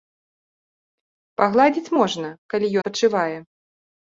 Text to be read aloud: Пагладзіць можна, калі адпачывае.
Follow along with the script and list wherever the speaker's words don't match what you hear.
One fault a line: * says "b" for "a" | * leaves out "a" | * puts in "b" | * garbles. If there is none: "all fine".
all fine